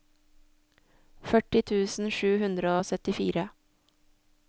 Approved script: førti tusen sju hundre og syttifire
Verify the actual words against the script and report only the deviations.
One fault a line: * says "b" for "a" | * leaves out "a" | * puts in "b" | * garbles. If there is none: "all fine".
all fine